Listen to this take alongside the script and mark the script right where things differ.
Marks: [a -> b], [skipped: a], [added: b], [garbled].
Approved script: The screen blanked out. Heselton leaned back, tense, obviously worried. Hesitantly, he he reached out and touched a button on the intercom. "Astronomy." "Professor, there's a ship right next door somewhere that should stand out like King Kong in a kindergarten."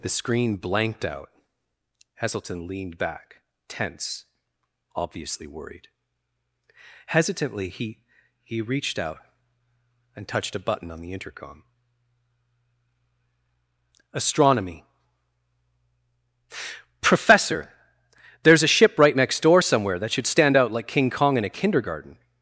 The screen blanked out. Heselton leaned back, tense, obviously worried. Hesitantly, he he reached out and touched a button on the intercom. "Astronomy." "Professor, there's a ship right next door somewhere that should stand out like King Kong in a kindergarten."